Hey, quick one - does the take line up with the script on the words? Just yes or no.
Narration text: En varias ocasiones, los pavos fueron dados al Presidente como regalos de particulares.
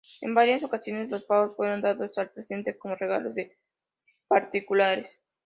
yes